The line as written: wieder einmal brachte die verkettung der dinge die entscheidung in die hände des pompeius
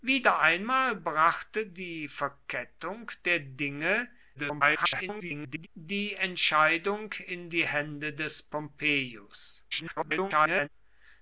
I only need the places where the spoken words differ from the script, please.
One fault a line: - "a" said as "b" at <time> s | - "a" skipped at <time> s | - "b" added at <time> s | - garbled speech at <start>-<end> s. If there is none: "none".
- garbled speech at 4.3-5.7 s
- garbled speech at 9.7-10.7 s